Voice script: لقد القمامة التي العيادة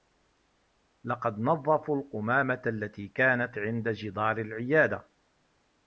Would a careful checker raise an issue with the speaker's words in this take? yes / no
yes